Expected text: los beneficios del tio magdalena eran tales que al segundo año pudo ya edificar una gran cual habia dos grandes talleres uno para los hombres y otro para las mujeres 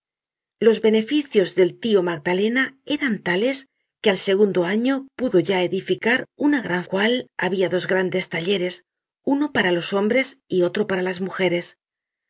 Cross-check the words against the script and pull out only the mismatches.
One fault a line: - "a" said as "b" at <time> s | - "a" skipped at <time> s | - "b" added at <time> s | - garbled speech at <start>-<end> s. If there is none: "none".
none